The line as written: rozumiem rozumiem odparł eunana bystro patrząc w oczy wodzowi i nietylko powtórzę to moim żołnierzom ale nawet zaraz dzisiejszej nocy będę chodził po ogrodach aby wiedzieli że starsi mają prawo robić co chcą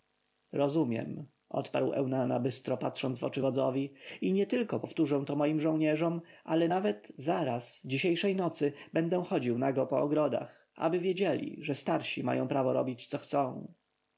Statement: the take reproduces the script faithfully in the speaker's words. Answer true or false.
false